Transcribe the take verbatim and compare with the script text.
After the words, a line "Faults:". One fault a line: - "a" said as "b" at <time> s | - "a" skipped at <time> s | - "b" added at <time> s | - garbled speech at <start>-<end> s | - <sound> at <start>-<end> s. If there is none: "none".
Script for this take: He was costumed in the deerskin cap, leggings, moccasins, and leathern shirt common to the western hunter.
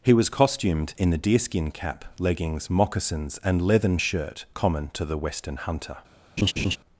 He was costumed in the deerskin cap, leggings, moccasins, and leathern shirt common to the western hunter.
Faults:
- laugh at 6.4-6.8 s